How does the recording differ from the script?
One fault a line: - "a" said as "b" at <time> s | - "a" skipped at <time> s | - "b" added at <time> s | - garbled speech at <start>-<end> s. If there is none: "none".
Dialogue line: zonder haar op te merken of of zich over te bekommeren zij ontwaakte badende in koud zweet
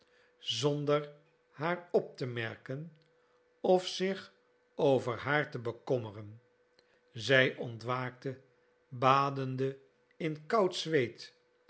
- "of" skipped at 3.9 s
- "haar" added at 5.2 s